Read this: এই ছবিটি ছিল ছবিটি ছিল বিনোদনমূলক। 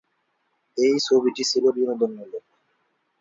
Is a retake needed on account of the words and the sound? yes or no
yes